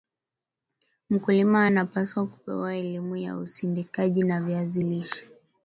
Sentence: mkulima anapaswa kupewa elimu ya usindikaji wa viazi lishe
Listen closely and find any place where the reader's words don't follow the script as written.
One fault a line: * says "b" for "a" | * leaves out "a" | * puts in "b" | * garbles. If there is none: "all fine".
all fine